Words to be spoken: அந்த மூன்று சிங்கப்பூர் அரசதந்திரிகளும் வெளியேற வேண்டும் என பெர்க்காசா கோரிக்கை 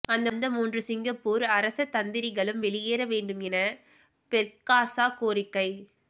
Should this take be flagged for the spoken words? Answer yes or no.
no